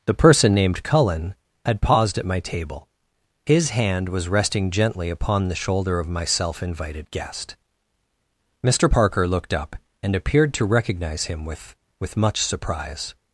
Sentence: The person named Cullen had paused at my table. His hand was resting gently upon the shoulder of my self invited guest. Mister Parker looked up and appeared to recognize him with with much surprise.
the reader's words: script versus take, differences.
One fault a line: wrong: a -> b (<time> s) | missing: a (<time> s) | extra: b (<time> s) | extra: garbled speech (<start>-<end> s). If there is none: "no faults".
no faults